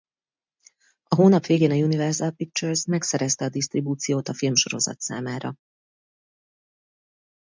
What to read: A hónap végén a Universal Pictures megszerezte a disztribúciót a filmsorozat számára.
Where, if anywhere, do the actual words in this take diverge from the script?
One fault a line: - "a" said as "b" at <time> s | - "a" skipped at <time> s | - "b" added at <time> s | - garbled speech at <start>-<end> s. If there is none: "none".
none